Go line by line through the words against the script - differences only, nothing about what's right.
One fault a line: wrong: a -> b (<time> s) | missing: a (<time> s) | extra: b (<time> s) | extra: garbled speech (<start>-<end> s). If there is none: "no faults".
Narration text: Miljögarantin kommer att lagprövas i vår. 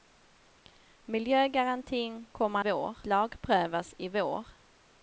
wrong: att -> vår (2.6 s)